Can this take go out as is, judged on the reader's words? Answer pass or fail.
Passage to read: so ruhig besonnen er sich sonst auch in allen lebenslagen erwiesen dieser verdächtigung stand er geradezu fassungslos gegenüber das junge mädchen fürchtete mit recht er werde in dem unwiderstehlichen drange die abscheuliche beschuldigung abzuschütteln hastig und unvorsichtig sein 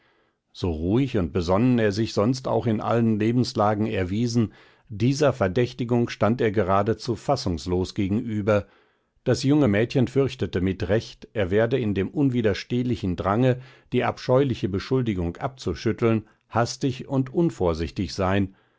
fail